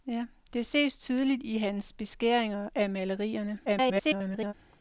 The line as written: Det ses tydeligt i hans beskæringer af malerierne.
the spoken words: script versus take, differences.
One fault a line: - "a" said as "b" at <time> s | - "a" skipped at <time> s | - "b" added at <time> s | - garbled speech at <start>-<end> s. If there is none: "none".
- garbled speech at 3.6-4.5 s